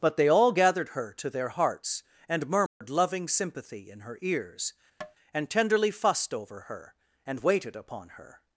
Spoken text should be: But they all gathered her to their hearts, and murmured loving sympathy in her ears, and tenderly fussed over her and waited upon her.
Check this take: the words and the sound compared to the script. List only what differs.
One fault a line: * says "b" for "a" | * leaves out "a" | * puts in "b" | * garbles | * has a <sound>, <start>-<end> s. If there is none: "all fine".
* has a dropout, 2.7-2.8 s
* has a tap, 5.0-5.2 s